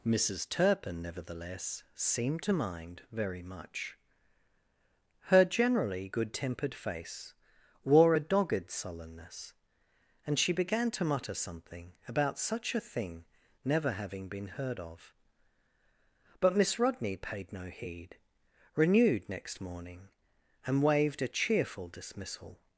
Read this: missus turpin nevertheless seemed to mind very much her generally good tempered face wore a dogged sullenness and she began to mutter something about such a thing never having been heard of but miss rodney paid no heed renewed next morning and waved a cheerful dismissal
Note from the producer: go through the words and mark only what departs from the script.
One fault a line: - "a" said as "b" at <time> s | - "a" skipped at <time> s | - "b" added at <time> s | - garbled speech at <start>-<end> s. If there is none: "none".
none